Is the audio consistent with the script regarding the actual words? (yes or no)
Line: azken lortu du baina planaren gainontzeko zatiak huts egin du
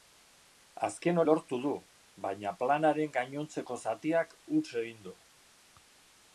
yes